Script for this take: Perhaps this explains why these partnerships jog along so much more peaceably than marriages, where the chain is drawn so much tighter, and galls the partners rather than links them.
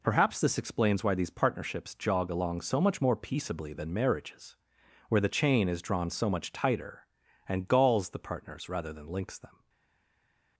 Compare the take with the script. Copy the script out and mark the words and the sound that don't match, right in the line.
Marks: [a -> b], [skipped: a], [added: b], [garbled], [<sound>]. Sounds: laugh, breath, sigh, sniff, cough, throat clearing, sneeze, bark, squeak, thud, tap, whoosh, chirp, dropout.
Perhaps this explains why these partnerships jog along so much more peaceably than marriages, where the chain is drawn so much tighter, and galls the partners rather than links them.